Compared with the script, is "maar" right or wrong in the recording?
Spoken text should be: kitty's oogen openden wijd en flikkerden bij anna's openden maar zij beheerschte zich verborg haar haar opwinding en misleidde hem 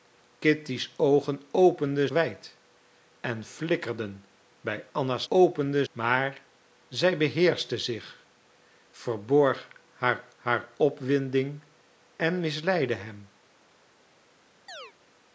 right